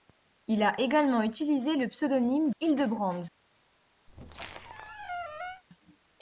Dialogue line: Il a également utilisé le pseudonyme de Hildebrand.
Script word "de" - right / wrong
wrong